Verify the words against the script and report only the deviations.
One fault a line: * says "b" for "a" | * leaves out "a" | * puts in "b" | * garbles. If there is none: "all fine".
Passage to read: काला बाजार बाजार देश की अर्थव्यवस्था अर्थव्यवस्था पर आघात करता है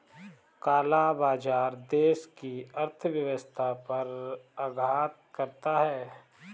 * leaves out "बाजार"
* leaves out "अर्थव्यवस्था"